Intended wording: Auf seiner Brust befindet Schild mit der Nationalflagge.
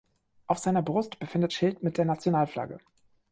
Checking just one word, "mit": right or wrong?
right